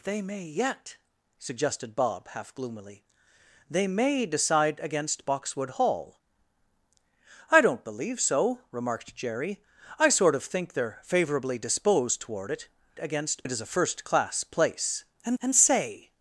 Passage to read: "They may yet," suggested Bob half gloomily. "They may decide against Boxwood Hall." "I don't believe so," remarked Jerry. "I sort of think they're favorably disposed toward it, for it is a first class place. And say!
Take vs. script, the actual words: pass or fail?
fail